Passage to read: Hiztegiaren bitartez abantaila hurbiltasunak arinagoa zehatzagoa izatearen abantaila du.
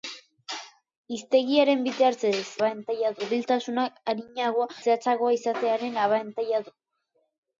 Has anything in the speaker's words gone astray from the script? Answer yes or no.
no